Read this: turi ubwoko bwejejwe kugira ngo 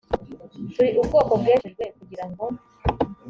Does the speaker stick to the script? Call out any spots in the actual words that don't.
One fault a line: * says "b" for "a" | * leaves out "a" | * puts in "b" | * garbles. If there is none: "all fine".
all fine